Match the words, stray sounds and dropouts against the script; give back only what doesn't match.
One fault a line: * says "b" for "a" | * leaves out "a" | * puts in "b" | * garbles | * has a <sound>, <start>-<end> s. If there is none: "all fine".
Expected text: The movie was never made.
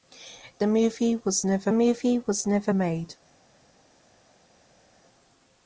* puts in "movie was never"